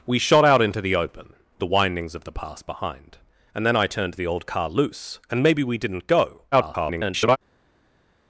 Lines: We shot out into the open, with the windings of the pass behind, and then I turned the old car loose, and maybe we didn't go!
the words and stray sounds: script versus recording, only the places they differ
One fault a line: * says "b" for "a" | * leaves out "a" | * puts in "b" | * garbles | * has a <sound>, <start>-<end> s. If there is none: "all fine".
* leaves out "with"
* garbles